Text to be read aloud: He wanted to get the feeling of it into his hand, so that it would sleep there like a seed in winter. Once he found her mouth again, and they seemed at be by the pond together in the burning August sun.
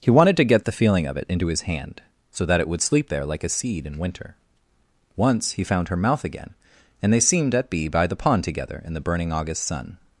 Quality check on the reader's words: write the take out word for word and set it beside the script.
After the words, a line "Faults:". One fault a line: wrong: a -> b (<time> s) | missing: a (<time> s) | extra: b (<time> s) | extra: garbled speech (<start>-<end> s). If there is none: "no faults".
He wanted to get the feeling of it into his hand, so that it would sleep there like a seed in winter. Once he found her mouth again, and they seemed at be by the pond together in the burning August sun.
Faults:
no faults